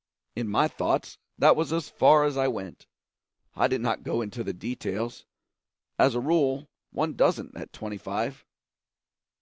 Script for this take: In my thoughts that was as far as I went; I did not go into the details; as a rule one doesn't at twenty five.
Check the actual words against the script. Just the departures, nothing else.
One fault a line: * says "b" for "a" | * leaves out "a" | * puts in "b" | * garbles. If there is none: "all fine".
all fine